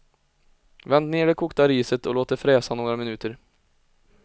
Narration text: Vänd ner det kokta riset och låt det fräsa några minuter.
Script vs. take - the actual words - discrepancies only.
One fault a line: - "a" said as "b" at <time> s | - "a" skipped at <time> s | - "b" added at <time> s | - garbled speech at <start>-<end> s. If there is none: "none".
none